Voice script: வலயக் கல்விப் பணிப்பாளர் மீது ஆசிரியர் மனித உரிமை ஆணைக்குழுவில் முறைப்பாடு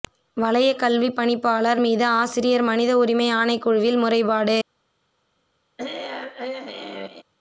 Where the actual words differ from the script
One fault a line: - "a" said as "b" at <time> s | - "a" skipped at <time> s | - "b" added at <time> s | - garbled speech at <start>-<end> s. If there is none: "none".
none